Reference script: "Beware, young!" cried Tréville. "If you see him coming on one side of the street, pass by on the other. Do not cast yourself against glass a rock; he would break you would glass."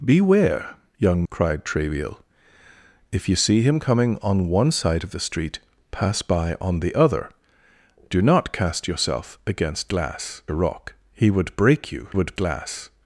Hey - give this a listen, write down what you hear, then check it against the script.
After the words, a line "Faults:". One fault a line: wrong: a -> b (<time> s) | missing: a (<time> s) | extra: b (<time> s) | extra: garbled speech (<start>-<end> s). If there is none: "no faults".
"Beware, young!" cried Tréville. "If you see him coming on one side of the street, pass by on the other. Do not cast yourself against glass a rock; he would break you would glass."
Faults:
no faults